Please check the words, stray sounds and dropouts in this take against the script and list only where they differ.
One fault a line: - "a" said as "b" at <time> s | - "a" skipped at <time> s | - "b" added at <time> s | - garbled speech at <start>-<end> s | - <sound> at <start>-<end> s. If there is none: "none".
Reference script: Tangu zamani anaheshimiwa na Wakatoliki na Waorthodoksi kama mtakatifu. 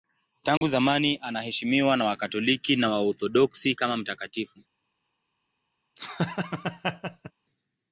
- dropout at 0.6-0.6 s
- laugh at 6.0-7.3 s